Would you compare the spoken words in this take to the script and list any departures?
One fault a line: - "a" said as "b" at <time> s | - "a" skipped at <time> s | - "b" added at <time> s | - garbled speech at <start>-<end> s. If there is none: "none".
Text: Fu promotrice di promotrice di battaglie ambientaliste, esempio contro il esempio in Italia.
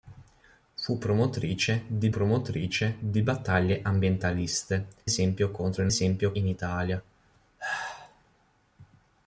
none